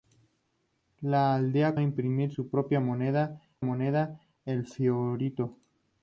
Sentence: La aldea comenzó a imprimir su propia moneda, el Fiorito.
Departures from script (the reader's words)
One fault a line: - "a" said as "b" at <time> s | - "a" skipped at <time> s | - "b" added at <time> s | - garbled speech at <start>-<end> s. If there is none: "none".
- "comenzó" skipped at 1.8 s
- "moneda" added at 3.6 s